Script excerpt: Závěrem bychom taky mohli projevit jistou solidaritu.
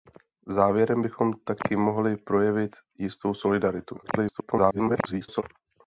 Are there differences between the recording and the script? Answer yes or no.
yes